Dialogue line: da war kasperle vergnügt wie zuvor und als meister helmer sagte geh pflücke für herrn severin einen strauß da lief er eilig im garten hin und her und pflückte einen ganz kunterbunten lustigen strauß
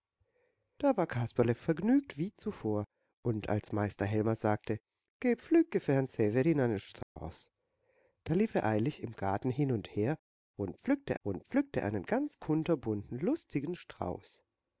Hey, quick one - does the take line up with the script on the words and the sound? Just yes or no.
no